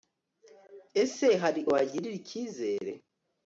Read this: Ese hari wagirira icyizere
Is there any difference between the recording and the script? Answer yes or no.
no